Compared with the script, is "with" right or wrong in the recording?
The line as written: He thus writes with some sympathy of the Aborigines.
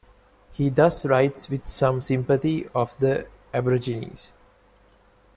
right